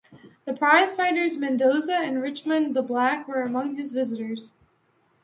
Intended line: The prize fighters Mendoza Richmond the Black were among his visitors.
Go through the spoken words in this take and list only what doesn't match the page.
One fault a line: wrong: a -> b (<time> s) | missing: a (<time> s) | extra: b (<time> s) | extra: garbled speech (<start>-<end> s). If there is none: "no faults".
extra: and (1.9 s)